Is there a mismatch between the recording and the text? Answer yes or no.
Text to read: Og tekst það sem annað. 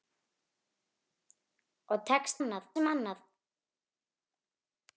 yes